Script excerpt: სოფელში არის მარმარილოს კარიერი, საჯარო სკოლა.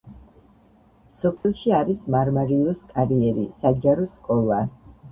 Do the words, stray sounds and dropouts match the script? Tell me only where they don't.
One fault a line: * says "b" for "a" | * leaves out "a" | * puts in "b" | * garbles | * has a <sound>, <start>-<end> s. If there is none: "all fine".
* has a dropout, 1.4-1.4 s